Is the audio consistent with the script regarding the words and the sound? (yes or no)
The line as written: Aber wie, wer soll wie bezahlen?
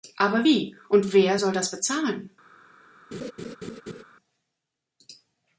no